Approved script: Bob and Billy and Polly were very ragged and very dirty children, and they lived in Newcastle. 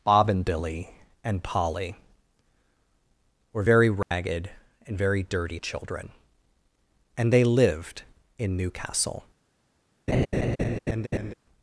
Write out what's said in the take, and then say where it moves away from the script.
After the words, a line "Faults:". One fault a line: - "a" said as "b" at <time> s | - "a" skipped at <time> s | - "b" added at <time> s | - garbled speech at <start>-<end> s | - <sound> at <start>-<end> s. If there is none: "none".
Bob and Billy and Polly were very ragged and very dirty children, and they lived in Newcastle.
Faults:
- dropout at 4.0-4.1 s
- laugh at 10.1-11.3 s